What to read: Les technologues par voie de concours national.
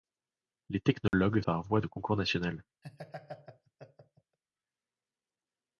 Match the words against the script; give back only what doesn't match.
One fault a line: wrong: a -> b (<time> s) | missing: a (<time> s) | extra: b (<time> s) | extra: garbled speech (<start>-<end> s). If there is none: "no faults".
no faults